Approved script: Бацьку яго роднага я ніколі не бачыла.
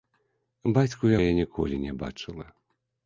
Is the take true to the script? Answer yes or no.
no